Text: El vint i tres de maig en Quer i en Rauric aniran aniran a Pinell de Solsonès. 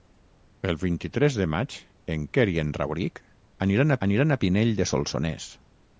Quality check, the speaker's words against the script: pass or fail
pass